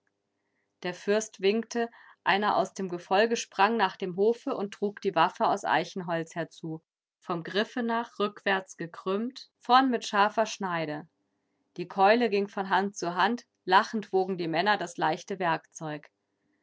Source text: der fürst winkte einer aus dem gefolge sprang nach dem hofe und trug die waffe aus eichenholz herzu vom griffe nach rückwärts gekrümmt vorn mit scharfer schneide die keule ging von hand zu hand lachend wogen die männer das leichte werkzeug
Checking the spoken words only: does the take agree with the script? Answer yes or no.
yes